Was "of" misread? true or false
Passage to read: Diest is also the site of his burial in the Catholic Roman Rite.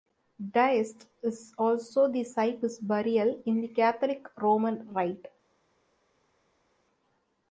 true